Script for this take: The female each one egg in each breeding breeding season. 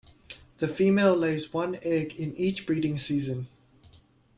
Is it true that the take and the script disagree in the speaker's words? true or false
true